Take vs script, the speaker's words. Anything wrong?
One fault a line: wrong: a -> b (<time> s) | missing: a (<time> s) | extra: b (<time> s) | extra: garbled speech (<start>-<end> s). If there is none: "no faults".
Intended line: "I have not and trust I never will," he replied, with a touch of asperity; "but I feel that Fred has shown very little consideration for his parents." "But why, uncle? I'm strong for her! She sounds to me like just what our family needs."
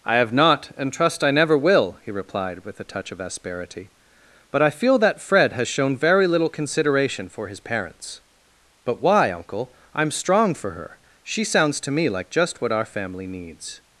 no faults